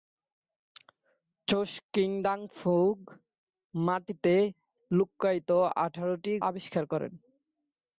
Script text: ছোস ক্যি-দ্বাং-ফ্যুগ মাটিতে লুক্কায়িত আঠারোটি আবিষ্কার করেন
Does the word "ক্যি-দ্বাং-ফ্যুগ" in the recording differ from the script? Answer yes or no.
no